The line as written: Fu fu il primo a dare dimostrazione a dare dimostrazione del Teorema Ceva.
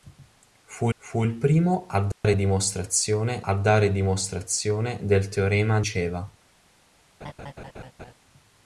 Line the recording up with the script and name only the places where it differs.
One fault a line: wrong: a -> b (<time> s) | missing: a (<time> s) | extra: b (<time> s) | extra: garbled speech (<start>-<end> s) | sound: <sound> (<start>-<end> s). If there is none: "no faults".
sound: dropout (2.1-2.2 s)
sound: laugh (7.2-8.1 s)